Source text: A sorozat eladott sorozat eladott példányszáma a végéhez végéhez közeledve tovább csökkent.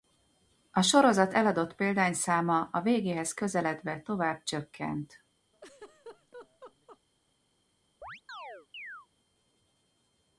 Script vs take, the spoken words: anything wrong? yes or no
yes